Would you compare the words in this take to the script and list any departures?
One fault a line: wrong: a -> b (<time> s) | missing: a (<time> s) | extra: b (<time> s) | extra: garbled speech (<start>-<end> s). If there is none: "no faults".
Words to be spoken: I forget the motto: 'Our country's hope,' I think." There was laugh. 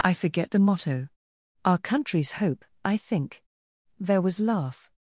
no faults